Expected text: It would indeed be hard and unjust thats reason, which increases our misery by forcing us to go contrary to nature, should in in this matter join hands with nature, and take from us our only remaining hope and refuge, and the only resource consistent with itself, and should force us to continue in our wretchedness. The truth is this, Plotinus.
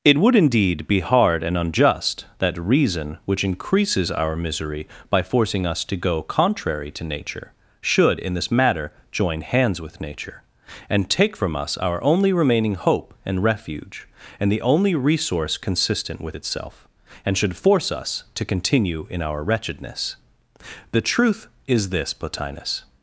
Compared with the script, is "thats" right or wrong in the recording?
wrong